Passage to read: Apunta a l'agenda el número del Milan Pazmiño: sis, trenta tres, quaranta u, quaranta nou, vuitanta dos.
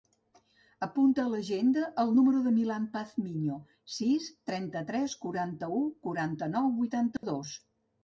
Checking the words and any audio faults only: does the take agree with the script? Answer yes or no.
no